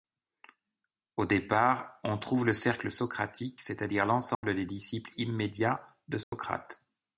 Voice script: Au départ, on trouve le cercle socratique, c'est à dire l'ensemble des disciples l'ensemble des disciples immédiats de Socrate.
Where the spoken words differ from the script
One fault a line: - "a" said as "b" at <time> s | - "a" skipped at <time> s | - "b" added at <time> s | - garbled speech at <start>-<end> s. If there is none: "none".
- "l'ensemble des disciples" skipped at 5.1 s